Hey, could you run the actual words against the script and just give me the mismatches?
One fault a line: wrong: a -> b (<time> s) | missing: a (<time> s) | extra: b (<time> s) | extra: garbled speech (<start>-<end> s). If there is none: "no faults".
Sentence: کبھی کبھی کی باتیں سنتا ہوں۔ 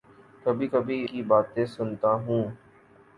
no faults